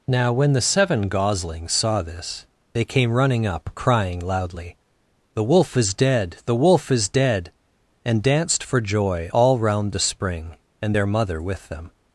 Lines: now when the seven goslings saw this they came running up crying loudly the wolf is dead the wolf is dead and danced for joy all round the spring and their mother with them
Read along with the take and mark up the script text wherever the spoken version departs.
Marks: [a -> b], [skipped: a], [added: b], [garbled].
now when the seven goslings saw this they came running up crying loudly the wolf is dead the wolf is dead and danced for joy all round the spring and their mother with them